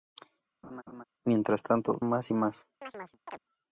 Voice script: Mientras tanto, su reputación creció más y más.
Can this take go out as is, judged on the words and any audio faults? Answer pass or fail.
fail